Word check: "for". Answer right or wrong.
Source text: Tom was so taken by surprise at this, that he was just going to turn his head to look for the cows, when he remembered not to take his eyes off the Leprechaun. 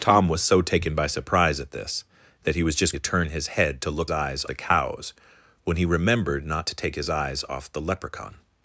wrong